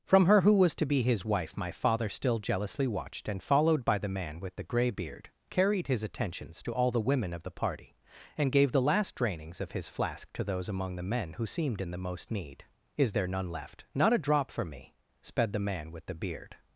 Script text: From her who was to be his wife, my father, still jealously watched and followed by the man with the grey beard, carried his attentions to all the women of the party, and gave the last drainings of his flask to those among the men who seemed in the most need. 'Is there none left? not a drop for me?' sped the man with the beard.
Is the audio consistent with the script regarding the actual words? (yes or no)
yes